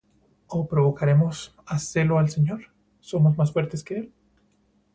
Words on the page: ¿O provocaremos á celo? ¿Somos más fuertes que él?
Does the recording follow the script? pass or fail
fail